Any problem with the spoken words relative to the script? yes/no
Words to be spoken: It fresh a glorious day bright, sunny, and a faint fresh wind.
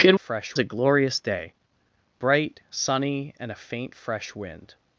no